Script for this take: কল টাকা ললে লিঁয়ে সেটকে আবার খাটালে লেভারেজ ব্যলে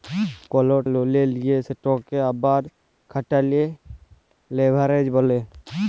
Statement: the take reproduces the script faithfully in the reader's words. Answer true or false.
false